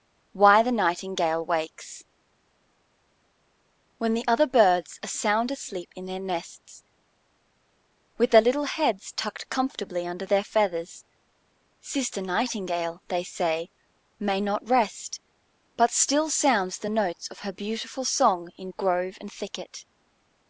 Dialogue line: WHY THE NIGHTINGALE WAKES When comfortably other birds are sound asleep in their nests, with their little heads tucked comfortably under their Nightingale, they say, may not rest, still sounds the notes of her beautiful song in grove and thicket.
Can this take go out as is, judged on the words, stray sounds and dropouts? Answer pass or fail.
fail